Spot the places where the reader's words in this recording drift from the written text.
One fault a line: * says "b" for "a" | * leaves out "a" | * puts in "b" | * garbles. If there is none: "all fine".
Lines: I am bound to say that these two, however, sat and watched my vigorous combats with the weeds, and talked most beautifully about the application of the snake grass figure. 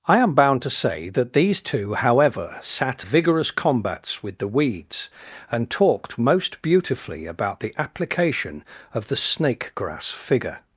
* leaves out "and watched my"